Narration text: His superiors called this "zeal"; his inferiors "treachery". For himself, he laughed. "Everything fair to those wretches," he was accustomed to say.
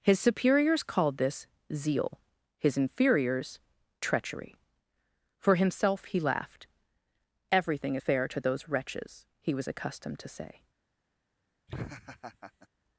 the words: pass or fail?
pass